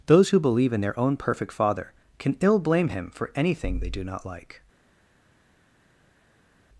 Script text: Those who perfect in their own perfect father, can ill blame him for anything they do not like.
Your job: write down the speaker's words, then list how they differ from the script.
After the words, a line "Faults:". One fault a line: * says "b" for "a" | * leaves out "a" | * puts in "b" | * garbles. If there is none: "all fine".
Those who believe in their own perfect father, can ill blame him for anything they do not like.
Faults:
* says "believe" for "perfect"